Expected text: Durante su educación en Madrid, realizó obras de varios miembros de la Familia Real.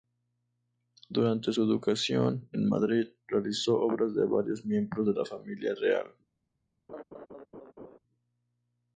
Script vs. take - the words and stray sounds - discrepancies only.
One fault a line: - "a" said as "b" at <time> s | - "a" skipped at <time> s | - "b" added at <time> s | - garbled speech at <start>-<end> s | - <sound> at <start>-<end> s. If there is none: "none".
- laugh at 6.9-8.0 s